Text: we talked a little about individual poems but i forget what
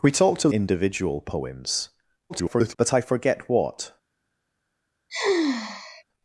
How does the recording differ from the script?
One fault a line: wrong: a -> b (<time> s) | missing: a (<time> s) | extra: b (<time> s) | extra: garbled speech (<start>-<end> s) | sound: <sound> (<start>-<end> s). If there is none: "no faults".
missing: little about (0.5 s)
extra: garbled speech (2.3-2.8 s)
sound: sigh (5.1-6.0 s)